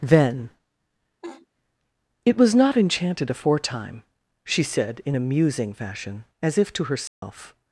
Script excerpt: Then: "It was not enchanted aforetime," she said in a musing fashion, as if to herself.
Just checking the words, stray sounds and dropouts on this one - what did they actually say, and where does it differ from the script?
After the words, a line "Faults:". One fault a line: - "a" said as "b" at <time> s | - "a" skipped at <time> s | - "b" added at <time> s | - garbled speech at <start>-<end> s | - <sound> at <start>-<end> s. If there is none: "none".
Then: "It was not enchanted aforetime," she said in a musing fashion, as if to herself.
Faults:
- laugh at 1.2-1.5 s
- dropout at 7.1-7.2 s